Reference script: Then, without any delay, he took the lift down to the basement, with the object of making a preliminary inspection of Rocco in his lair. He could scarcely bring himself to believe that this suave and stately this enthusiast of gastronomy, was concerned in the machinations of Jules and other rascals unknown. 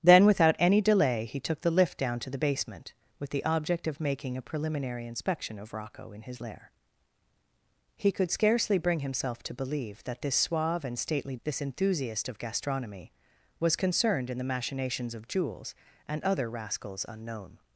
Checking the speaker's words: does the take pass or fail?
pass